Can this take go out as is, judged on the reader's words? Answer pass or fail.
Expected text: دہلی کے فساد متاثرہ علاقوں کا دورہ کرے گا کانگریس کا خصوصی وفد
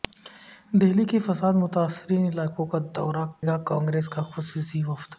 fail